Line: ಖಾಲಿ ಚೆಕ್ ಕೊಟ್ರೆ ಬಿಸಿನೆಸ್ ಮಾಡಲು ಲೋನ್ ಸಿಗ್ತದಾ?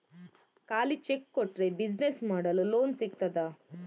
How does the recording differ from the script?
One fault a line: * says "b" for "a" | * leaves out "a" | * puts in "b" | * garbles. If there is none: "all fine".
all fine